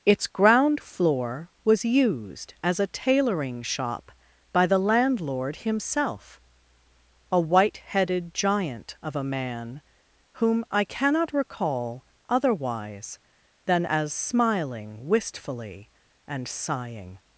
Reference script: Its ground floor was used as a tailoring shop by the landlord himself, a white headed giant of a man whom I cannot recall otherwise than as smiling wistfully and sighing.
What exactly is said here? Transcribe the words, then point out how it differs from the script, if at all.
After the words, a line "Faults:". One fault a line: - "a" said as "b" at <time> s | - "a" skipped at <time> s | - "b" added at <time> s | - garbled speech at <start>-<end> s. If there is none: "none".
Its ground floor was used as a tailoring shop by the landlord himself, a white headed giant of a man whom I cannot recall otherwise than as smiling wistfully and sighing.
Faults:
none